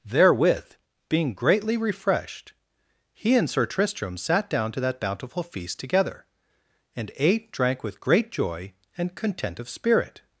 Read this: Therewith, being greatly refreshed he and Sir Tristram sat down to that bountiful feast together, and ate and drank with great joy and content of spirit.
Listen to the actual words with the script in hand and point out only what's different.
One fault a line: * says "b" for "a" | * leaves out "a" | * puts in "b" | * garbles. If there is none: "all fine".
* leaves out "and"